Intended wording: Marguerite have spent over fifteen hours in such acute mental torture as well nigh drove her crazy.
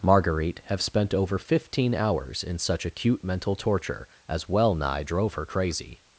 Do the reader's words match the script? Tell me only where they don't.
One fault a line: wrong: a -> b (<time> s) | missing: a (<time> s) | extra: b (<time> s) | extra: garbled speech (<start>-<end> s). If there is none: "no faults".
no faults